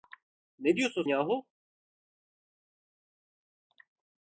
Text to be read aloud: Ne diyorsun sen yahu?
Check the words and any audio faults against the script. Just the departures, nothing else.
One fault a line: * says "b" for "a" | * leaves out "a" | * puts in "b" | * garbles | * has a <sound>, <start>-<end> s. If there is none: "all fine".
* leaves out "sen"